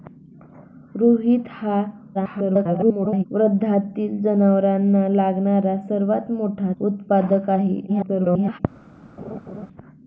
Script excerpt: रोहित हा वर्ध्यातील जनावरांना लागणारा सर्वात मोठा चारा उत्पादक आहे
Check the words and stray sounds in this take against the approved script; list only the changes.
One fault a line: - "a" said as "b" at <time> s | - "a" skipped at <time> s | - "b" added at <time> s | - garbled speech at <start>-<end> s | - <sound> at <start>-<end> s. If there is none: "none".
- garbled speech at 2.1-3.2 s
- "चारा" skipped at 6.7 s
- garbled speech at 7.9-8.6 s
- laugh at 9.2-9.7 s